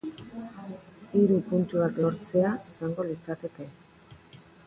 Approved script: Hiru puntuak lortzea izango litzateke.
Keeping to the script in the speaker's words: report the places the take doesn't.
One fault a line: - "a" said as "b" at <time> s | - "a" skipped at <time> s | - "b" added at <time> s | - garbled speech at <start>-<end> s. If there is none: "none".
none